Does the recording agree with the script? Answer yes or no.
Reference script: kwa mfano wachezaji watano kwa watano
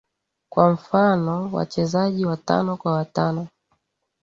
yes